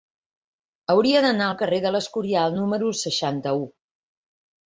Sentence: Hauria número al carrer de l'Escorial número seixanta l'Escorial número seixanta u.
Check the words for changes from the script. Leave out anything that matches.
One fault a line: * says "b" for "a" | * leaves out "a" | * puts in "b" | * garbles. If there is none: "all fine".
* says "d'anar" for "número"
* leaves out "l'Escorial número seixanta"